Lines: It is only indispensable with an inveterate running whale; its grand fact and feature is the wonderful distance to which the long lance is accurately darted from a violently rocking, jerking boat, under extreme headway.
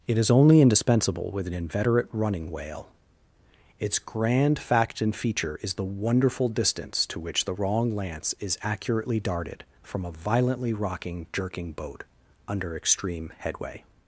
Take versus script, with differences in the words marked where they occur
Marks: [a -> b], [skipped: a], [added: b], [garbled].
It is only indispensable with an inveterate running whale; its grand fact and feature is the wonderful distance to which the [long -> wrong] lance is accurately darted from a violently rocking, jerking boat, under extreme headway.